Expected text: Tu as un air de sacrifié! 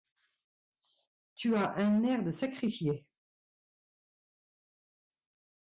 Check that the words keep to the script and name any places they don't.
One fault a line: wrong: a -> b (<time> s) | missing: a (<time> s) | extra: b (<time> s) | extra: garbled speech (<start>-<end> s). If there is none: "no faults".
no faults